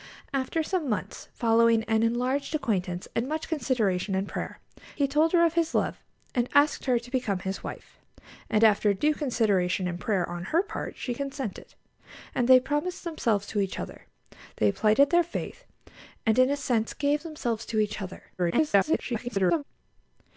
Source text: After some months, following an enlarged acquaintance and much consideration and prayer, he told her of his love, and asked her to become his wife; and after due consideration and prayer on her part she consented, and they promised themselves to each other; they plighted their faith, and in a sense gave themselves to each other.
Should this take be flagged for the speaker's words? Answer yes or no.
yes